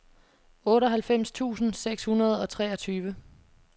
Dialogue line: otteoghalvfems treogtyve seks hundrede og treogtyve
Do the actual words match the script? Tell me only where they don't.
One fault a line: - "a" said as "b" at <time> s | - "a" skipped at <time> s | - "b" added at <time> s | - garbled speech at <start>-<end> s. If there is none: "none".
- "treogtyve" said as "tusind" at 1.3 s